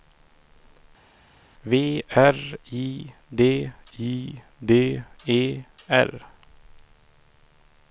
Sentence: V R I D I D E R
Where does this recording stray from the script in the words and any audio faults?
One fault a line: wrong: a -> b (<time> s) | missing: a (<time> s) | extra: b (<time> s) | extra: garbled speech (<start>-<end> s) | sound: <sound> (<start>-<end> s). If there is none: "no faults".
no faults